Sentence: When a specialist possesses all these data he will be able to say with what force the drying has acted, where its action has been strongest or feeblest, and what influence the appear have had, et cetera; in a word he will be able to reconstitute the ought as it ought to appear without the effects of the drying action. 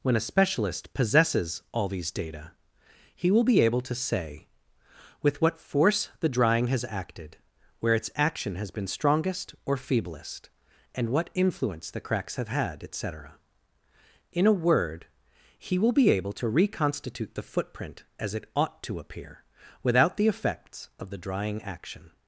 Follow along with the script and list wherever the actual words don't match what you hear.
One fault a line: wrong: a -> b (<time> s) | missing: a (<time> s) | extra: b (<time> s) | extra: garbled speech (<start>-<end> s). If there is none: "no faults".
wrong: appear -> cracks (12.0 s)
wrong: ought -> footprint (17.4 s)